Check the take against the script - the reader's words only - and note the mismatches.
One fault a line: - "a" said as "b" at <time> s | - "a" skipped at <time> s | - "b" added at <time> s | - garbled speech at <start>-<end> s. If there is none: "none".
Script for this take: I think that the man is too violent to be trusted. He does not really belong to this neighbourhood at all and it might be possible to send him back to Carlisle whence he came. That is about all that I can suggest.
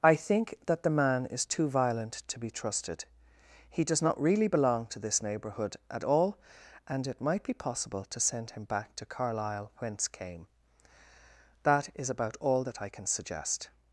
- "he" skipped at 10.1 s